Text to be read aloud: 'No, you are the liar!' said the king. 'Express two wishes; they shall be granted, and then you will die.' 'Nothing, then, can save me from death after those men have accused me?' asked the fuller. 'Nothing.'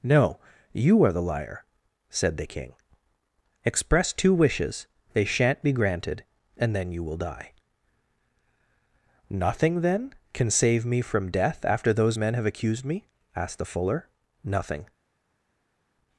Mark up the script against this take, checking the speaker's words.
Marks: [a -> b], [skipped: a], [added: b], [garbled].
'No, you are the liar!' said the king. 'Express two wishes; they [shall -> shan't] be granted, and then you will die.' 'Nothing, then, can save me from death after those men have accused me?' asked the fuller. 'Nothing.'